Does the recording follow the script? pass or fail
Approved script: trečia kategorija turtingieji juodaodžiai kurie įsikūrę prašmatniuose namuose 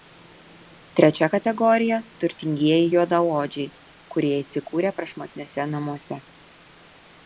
pass